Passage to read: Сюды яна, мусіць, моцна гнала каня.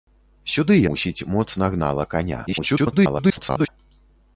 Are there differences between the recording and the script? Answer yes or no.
yes